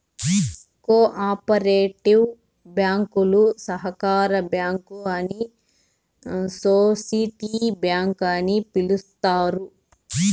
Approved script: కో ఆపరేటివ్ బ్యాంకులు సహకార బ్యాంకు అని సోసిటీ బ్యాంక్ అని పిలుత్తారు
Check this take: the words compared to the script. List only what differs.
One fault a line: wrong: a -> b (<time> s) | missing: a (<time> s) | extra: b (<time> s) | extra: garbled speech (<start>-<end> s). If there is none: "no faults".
no faults